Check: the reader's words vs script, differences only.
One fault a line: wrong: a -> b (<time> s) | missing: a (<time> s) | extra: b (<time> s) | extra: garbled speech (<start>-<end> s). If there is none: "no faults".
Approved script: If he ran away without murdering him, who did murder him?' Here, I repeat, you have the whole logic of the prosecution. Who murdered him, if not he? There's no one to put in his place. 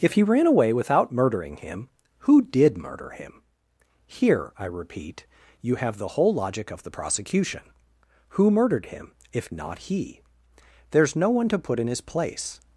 no faults